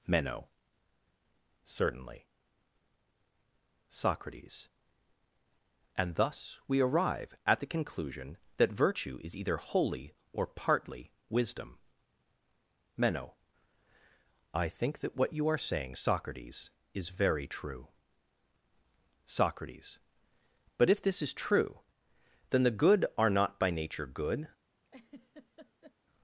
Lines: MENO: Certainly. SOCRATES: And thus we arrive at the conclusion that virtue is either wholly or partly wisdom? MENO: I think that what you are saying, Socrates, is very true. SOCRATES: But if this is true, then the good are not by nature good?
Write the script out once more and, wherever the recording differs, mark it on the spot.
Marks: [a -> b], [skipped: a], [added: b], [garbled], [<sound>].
MENO: Certainly. SOCRATES: And thus we arrive at the conclusion that virtue is either wholly or partly wisdom? MENO: I think that what you are saying, Socrates, is very true. SOCRATES: But if this is true, then the good are not by nature good? [laugh]